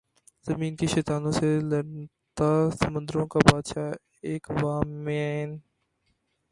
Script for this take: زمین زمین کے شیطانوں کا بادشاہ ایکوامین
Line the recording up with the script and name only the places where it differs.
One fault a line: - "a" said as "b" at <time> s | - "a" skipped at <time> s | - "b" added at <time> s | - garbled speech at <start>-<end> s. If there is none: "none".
- "زمین" skipped at 0.7 s
- "سے لڑتا سمندروں" added at 1.3 s